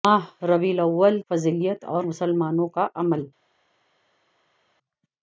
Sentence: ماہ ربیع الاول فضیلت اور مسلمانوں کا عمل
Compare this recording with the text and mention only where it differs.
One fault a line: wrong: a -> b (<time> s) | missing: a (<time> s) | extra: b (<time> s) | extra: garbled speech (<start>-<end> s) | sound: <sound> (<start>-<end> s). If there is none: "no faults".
no faults